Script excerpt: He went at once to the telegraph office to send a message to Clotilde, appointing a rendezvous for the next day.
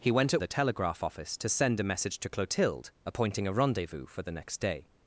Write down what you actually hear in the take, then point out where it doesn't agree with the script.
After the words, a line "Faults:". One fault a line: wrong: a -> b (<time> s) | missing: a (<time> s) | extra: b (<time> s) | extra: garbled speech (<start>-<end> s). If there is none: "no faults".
He went at the telegraph office to send a message to Clotilde, appointing a rendezvous for the next day.
Faults:
missing: once to (0.4 s)